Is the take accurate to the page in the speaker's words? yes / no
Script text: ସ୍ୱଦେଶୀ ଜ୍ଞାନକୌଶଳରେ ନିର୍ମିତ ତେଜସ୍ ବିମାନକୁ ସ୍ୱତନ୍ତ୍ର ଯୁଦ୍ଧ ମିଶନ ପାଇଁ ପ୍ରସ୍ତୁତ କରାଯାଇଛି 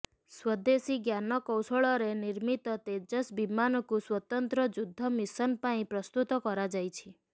yes